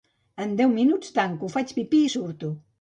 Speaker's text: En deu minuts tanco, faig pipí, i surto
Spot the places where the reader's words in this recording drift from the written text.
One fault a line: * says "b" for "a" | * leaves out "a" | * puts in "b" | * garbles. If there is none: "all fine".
all fine